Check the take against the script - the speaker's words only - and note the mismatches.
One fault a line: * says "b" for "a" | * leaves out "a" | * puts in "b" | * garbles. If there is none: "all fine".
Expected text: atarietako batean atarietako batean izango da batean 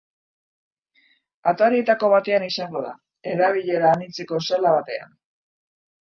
* says "izango da erabilera anitzeko sala" for "atarietako batean izango da"